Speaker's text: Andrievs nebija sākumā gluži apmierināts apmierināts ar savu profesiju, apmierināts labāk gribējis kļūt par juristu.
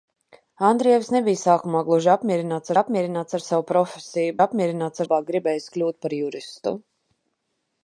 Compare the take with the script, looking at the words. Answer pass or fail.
pass